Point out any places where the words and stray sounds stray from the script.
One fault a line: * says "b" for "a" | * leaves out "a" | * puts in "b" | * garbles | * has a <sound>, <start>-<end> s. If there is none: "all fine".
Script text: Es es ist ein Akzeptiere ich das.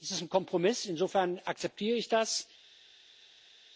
* leaves out "es"
* puts in "Kompromiss insofern"